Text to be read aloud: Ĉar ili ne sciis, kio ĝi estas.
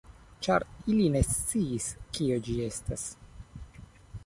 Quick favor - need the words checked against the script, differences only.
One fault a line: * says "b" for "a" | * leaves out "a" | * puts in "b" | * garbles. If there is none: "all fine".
all fine